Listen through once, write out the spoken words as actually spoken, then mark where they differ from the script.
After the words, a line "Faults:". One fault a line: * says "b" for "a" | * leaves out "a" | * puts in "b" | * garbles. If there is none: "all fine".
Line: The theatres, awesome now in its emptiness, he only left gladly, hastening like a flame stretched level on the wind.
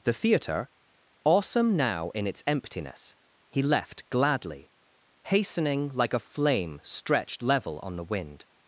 The theatre, awesome now in its emptiness, he left gladly, hastening like a flame stretched level on the wind.
Faults:
* says "theatre" for "theatres"
* leaves out "only"